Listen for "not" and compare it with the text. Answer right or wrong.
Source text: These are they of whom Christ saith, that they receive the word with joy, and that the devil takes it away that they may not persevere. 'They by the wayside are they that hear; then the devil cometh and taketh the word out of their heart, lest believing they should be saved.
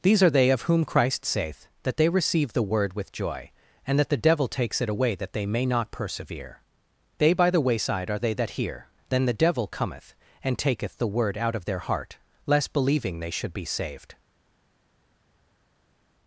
right